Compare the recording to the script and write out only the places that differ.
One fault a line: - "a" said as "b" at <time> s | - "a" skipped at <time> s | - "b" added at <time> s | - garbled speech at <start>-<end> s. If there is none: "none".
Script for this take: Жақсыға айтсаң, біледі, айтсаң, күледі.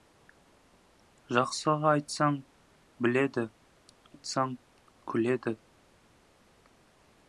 none